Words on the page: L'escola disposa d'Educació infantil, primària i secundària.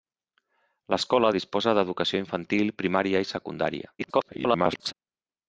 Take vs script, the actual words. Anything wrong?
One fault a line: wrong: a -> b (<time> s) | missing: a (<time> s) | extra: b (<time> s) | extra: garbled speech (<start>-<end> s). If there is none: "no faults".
extra: garbled speech (4.0-4.9 s)